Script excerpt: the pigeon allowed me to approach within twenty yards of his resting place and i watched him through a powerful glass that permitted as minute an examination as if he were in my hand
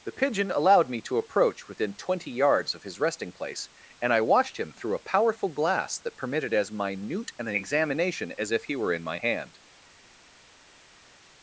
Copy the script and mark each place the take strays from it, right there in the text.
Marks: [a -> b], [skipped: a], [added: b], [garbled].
the pigeon allowed me to approach within twenty yards of his resting place and i watched him through a powerful glass that permitted as minute an examination as if he were in my hand